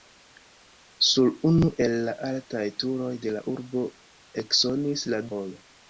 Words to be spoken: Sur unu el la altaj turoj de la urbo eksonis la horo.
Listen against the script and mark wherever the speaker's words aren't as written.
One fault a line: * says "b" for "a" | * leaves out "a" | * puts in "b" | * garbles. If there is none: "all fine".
all fine